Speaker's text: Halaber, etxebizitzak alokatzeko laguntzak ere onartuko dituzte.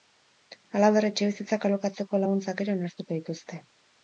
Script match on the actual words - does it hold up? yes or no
yes